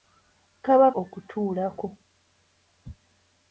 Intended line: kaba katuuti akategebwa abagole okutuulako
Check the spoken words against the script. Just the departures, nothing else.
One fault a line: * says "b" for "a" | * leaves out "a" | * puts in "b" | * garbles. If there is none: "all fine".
* leaves out "katuuti akategebwa abagole"